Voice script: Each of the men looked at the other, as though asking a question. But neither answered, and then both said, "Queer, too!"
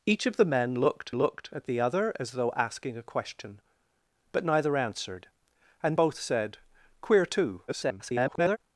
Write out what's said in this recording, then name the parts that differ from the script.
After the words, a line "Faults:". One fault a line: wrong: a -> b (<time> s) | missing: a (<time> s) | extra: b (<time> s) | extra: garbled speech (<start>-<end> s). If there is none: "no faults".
Each of the men looked looked at the other, as though asking a question. But neither answered, and both said, "Queer, too!" [garbled]
Faults:
extra: looked (1.1 s)
missing: then (6.0 s)
extra: garbled speech (7.7-8.6 s)